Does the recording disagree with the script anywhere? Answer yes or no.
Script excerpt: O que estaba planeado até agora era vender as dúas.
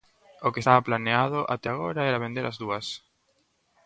no